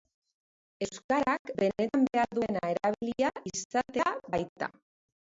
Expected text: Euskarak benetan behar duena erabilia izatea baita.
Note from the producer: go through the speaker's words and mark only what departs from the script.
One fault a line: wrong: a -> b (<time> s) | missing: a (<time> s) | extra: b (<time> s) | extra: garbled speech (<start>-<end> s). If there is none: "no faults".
no faults